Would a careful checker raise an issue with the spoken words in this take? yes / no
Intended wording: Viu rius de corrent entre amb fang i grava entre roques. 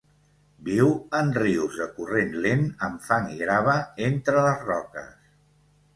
yes